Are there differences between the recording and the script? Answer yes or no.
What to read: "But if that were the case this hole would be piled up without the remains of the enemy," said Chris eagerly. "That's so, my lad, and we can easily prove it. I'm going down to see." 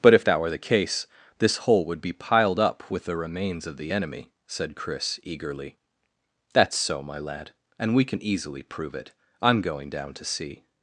yes